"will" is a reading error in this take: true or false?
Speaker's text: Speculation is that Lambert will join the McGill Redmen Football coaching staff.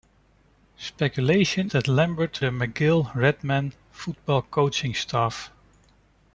true